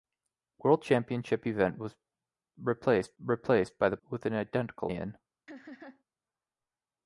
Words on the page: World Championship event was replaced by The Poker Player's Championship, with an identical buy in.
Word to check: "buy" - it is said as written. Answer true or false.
false